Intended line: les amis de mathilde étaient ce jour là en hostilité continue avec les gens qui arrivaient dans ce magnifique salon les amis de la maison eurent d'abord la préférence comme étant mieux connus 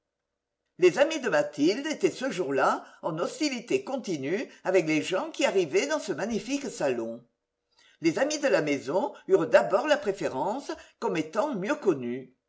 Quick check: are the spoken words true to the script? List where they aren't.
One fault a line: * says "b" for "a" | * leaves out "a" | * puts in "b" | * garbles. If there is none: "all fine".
all fine